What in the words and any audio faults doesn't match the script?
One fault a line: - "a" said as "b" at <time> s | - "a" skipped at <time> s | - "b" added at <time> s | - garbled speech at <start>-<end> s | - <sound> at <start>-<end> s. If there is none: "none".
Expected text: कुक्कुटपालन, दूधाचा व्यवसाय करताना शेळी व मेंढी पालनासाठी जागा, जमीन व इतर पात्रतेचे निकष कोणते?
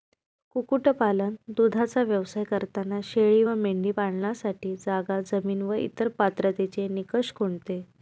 none